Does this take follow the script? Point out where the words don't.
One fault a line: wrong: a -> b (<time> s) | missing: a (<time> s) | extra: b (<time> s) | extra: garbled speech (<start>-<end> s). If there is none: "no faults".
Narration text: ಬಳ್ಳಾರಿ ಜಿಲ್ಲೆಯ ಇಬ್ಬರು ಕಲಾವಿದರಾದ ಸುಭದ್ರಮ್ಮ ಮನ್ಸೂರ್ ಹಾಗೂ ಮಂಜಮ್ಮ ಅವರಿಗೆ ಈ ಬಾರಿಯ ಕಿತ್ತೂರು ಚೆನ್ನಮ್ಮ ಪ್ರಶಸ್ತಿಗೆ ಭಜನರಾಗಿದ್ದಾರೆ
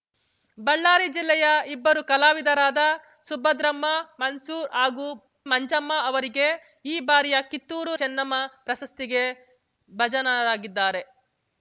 no faults